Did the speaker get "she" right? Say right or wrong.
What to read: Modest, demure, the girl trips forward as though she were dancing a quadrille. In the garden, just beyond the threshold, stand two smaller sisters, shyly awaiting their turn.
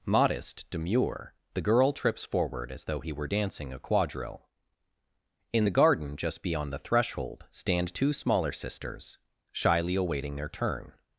wrong